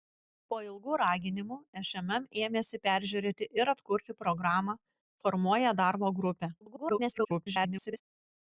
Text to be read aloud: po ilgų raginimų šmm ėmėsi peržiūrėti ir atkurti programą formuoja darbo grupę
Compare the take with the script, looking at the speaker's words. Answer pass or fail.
fail